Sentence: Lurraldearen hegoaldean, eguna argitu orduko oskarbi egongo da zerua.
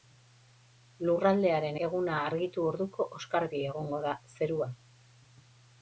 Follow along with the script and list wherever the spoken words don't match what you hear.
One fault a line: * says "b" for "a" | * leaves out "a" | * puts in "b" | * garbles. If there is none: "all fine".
* leaves out "hegoaldean"